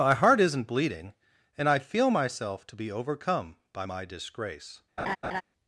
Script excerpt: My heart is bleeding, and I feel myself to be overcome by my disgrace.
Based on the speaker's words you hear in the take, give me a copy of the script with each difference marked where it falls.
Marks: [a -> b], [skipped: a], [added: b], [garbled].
My heart [is -> isn't] bleeding, and I feel myself to be overcome by my disgrace.